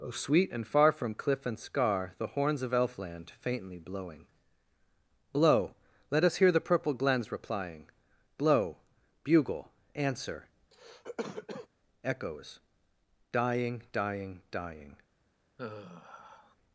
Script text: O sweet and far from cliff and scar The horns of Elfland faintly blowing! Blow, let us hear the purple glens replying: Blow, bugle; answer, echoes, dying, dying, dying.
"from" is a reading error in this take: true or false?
false